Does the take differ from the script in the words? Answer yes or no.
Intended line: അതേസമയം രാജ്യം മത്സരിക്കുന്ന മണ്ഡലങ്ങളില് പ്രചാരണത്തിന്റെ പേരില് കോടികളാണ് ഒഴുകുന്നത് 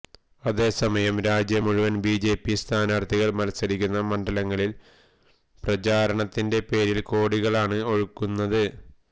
yes